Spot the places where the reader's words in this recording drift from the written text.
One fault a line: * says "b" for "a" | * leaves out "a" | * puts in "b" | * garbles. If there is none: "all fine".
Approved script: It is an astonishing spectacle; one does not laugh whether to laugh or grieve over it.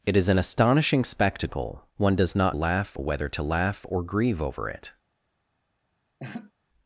all fine